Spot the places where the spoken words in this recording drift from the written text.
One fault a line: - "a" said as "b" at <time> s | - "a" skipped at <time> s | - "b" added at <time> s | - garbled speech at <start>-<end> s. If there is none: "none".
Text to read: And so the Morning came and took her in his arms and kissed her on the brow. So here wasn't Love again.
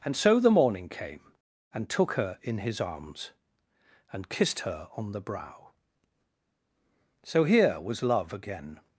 - "wasn't" said as "was" at 7.8 s